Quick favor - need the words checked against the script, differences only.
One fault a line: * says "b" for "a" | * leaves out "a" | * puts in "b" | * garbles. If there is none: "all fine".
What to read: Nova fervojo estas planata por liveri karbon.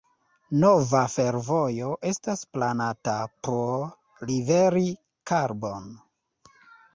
all fine